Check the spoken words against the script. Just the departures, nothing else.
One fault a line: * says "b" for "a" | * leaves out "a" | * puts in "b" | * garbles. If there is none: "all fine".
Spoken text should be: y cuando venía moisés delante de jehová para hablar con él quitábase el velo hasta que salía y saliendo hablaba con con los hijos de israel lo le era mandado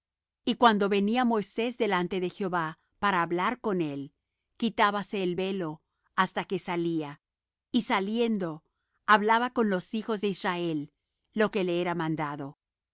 * leaves out "con"
* puts in "que"